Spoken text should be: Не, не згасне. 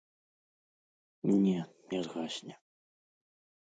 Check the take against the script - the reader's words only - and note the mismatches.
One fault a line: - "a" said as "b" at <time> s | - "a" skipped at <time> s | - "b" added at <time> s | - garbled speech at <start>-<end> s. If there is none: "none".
none